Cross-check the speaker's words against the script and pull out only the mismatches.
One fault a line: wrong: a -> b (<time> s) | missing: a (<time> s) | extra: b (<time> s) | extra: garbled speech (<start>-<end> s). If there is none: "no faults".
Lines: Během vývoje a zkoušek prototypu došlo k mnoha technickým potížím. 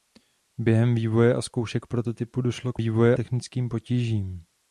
wrong: mnoha -> vývoje (2.8 s)